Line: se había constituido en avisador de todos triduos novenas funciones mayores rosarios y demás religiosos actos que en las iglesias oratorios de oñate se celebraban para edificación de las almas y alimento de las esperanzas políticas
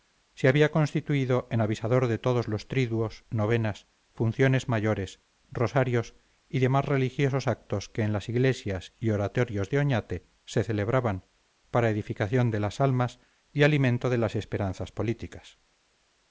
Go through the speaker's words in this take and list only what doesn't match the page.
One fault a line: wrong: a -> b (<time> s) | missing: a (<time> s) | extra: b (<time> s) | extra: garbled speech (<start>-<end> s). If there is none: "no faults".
extra: los (2.5 s)
extra: y (9.0 s)